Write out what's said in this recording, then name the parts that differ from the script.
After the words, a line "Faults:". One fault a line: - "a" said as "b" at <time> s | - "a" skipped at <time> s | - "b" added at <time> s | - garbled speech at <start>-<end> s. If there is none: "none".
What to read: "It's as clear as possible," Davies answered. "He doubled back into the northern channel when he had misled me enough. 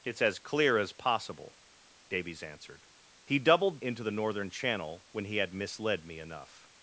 "It's as clear as possible," Davies answered. "He doubled into the northern channel when he had misled me enough.
Faults:
- "back" skipped at 3.8 s